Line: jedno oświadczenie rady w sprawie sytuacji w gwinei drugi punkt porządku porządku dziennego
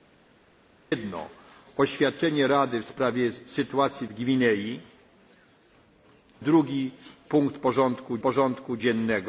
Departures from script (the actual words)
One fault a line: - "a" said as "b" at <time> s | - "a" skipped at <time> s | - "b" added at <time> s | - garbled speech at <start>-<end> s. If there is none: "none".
none